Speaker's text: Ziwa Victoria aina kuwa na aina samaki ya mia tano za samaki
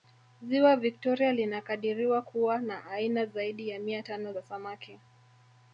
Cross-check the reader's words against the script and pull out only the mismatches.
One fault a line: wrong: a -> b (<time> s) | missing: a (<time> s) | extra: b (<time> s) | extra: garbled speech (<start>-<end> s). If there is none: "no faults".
wrong: aina -> linakadiriwa (1.3 s)
wrong: samaki -> zaidi (3.3 s)